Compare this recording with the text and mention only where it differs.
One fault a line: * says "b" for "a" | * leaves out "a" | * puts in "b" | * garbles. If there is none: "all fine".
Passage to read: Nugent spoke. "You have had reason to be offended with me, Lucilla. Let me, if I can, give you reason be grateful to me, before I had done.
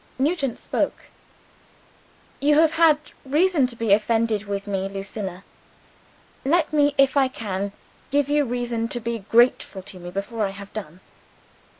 * puts in "to"
* says "have" for "had"